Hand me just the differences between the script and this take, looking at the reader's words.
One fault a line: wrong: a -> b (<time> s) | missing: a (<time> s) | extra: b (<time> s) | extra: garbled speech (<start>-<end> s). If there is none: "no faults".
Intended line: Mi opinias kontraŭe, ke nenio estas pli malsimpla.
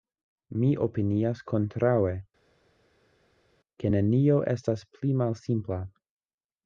no faults